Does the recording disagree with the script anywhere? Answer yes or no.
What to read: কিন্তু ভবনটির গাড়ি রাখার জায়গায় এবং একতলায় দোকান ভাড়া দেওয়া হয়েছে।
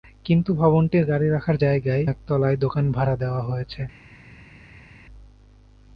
yes